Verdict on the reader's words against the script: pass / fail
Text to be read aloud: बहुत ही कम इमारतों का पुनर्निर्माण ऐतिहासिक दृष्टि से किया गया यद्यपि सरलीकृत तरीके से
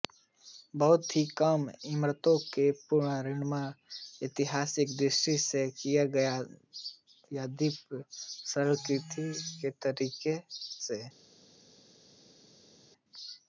pass